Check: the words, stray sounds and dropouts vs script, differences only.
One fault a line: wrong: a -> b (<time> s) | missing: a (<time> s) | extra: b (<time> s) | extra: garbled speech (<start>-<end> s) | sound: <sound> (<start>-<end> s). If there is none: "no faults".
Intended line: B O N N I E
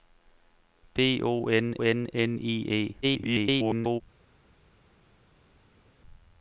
extra: N (2.1 s)
extra: garbled speech (3.0-4.0 s)